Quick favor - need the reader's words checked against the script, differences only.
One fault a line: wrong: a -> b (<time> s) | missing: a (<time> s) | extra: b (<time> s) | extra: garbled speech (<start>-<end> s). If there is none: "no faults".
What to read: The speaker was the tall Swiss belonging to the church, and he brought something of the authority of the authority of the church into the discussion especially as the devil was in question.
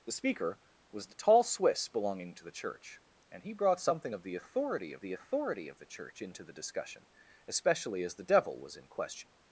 no faults